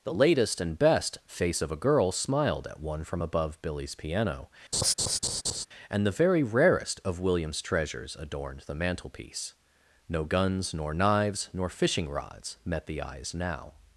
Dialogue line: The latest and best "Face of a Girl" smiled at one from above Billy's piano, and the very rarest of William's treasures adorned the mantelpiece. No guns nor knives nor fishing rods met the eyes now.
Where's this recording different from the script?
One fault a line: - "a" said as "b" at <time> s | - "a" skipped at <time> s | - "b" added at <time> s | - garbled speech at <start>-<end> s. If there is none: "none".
none